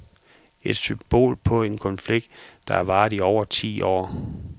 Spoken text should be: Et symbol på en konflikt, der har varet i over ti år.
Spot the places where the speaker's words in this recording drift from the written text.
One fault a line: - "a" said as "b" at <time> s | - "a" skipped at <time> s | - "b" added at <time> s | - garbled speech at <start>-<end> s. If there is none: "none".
none